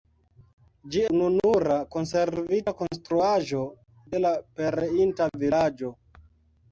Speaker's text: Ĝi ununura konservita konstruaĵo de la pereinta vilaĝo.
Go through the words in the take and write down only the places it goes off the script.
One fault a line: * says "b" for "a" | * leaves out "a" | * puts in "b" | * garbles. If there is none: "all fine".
all fine